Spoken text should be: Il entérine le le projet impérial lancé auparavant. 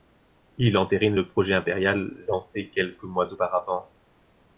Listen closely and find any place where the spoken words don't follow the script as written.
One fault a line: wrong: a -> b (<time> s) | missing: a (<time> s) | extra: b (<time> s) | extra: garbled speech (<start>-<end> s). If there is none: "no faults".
missing: le (1.3 s)
extra: quelques mois (2.7 s)